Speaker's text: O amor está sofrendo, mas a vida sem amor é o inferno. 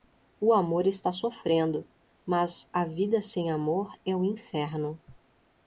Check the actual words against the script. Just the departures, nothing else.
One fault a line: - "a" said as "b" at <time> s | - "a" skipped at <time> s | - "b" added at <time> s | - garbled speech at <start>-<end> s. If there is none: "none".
none